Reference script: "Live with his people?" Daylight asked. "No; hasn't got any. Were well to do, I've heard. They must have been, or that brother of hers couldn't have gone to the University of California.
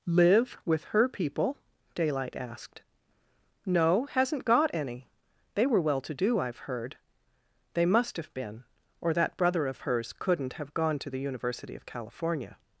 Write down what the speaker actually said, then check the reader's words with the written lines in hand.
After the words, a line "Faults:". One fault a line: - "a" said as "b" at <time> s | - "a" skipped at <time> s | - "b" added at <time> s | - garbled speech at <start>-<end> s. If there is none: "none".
"Live with her people?" Daylight asked. "No; hasn't got any. They were well to do, I've heard. They must have been, or that brother of hers couldn't have gone to the University of California.
Faults:
- "his" said as "her" at 0.8 s
- "They" added at 5.5 s